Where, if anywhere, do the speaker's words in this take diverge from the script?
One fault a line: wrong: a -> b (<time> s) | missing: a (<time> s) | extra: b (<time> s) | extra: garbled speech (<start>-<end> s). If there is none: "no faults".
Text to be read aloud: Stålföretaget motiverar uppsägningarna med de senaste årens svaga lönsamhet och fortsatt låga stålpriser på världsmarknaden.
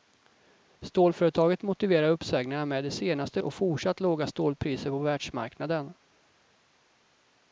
missing: årens svaga lönsamhet (3.4 s)